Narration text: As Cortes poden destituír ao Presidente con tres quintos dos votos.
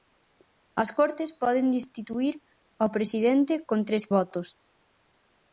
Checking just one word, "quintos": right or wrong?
wrong